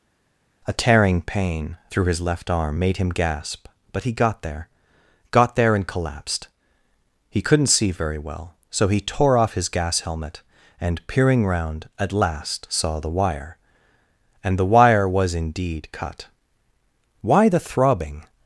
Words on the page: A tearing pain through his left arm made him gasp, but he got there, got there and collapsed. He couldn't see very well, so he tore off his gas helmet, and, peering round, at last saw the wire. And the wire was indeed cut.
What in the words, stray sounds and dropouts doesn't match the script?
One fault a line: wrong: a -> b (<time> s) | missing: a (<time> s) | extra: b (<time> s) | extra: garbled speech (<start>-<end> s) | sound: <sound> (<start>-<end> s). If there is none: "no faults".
extra: Why the throbbing (17.2 s)